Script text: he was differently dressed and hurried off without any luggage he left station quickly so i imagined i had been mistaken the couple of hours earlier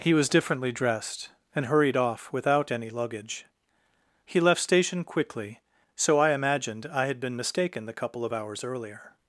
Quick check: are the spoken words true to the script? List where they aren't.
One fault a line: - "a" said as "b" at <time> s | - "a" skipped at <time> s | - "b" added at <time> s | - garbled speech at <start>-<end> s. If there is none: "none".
none